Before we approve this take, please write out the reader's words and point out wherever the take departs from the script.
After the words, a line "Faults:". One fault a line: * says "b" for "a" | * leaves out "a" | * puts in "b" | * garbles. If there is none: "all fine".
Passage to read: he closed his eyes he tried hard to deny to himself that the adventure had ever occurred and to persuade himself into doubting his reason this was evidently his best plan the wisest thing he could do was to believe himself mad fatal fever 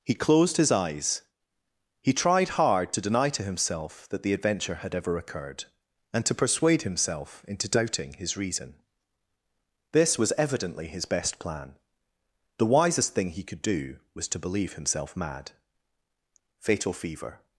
he closed his eyes he tried hard to deny to himself that the adventure had ever occurred and to persuade himself into doubting his reason this was evidently his best plan the wisest thing he could do was to believe himself mad fatal fever
Faults:
all fine